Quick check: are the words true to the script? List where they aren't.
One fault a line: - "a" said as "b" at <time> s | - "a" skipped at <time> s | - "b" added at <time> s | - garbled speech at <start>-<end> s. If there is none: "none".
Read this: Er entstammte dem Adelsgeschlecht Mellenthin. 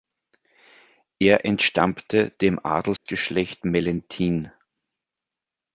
none